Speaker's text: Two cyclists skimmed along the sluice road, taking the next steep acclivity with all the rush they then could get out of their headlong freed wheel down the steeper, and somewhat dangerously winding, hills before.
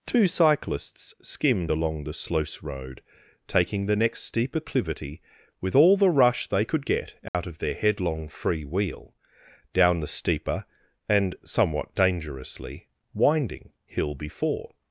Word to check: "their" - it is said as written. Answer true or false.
true